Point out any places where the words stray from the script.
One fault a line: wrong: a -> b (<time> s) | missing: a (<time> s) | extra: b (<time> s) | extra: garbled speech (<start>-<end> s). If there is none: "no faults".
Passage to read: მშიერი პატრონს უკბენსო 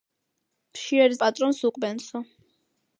no faults